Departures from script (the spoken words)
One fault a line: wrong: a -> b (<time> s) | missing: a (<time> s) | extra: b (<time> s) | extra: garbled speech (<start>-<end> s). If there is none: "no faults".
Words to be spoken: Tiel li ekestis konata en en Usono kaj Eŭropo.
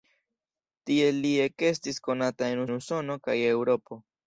no faults